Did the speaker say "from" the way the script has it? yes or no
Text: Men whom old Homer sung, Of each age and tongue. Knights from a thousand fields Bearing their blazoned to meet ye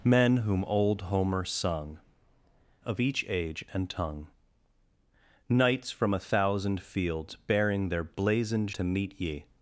yes